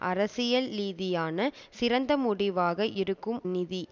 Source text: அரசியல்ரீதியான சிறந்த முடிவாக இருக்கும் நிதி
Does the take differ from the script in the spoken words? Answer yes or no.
no